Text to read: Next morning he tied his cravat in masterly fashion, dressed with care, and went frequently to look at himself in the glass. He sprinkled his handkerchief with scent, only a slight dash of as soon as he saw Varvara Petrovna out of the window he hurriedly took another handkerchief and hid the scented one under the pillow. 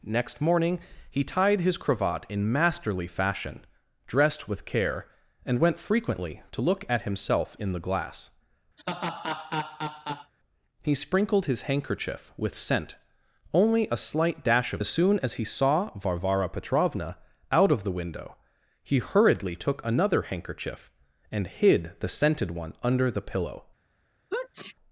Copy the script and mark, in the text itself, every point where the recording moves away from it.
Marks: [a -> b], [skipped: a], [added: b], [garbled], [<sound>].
Next morning he tied his cravat in masterly fashion, dressed with care, and went frequently to look at himself in the glass. [laugh] He sprinkled his handkerchief with scent, only a slight dash of as soon as he saw Varvara Petrovna out of the window he hurriedly took another handkerchief and hid the scented one under the pillow. [sneeze]